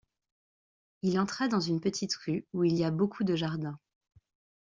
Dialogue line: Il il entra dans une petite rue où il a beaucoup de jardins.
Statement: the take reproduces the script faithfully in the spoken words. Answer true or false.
false